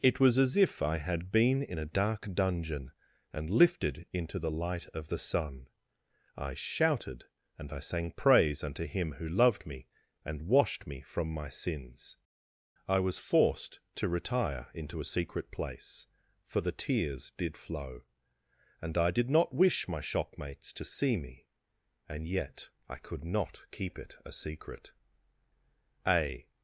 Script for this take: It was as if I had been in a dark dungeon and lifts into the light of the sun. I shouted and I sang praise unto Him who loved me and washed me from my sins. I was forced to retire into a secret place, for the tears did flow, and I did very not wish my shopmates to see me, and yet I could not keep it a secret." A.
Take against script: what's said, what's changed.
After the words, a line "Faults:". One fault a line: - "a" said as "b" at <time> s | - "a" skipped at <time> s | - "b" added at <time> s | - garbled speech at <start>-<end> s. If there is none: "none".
It was as if I had been in a dark dungeon and lifted into the light of the sun. I shouted and I sang praise unto Him who loved me and washed me from my sins. I was forced to retire into a secret place, for the tears did flow, and I did not wish my shopmates to see me, and yet I could not keep it a secret." A.
Faults:
- "lifts" said as "lifted" at 3.5 s
- "very" skipped at 19.3 s